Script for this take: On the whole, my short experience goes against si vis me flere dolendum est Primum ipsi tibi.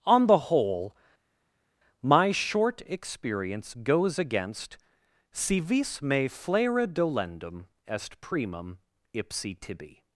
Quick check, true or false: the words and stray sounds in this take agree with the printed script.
true